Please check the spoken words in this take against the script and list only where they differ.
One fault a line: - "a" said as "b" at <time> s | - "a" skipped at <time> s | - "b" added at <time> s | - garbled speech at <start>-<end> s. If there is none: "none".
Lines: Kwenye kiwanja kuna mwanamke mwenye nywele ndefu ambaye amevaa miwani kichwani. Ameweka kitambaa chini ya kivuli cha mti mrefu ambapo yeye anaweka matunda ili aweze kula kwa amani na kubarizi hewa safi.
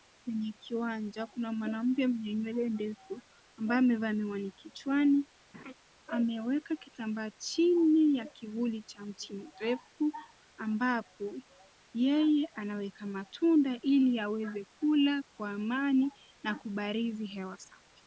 none